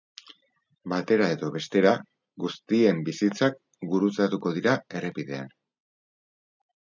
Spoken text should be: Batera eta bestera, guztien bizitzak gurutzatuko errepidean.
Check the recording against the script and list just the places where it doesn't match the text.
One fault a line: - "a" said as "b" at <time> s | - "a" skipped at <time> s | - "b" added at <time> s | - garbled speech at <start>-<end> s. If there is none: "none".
- "eta" said as "edo" at 1.3 s
- "dira" added at 4.6 s